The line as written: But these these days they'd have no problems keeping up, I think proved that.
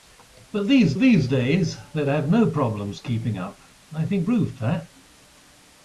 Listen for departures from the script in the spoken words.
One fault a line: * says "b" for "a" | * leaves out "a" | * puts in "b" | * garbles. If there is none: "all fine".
all fine